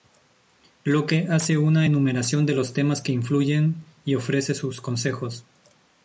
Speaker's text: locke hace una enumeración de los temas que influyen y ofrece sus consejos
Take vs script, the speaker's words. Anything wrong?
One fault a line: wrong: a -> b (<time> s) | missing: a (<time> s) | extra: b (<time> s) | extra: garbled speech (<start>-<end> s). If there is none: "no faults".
no faults